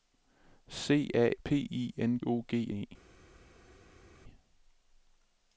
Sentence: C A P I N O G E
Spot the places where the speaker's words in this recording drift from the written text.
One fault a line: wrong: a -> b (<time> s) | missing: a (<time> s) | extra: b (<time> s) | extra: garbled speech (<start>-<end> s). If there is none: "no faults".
no faults